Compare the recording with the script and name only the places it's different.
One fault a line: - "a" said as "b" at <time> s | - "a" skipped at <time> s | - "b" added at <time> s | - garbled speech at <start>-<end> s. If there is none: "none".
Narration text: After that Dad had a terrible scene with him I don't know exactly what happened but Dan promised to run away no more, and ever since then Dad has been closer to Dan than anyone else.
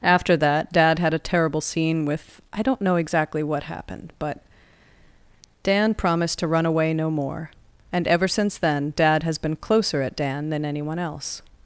- "him" skipped at 2.4 s
- "to" said as "at" at 10.0 s